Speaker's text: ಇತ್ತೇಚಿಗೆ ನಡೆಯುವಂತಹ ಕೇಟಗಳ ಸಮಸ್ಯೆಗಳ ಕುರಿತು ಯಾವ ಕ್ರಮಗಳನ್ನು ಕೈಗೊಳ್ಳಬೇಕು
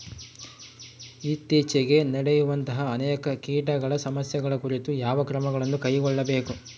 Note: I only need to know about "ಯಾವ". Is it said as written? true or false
true